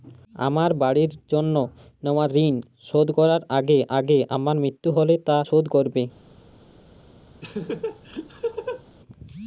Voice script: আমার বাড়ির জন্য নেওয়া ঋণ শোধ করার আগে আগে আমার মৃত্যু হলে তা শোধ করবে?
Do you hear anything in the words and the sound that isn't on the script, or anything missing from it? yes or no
yes